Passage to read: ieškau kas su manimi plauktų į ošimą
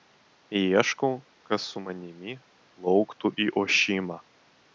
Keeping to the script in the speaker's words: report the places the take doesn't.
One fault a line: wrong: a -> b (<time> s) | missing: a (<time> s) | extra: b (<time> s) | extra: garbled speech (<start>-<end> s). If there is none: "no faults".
no faults